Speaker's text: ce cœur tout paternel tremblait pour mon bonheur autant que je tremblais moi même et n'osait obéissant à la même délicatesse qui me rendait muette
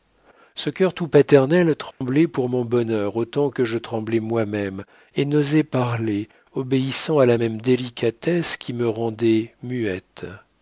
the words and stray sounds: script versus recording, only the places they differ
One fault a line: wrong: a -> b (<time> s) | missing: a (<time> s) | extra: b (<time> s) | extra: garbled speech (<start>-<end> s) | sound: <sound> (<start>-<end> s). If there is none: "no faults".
sound: dropout (1.9-2.0 s)
extra: parler (5.6 s)